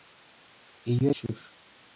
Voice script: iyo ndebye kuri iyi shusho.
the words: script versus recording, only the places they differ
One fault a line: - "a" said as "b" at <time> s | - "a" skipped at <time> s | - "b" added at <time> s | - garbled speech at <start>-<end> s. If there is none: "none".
- "ndebye kuri iyi" skipped at 1.1 s